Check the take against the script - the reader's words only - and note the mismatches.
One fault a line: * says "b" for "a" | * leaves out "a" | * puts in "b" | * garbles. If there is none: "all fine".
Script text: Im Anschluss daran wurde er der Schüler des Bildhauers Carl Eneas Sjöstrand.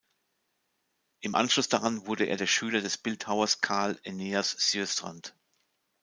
all fine